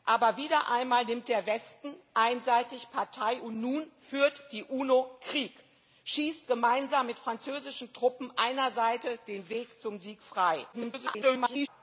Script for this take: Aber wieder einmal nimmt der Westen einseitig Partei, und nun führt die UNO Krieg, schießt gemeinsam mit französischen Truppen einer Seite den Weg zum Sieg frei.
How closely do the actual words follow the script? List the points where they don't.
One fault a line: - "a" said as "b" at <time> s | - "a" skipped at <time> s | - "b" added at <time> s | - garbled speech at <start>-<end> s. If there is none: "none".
- garbled speech at 10.7-11.7 s